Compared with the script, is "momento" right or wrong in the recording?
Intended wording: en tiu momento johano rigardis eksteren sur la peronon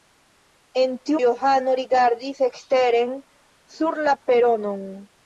wrong